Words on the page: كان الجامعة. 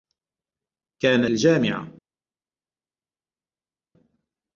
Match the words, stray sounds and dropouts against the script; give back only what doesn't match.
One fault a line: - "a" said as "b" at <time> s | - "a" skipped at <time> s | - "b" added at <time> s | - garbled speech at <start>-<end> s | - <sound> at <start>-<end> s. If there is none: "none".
none